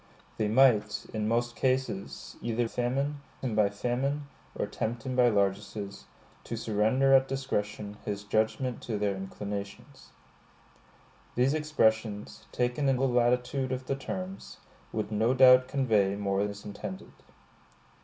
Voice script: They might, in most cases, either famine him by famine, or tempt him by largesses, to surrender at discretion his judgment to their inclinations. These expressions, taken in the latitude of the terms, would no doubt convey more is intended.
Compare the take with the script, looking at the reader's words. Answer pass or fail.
pass